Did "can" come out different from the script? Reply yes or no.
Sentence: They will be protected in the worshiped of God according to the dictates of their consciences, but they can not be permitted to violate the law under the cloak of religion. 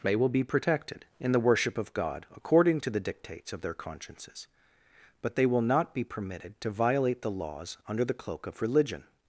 yes